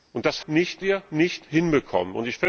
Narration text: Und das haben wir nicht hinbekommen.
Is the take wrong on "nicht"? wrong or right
right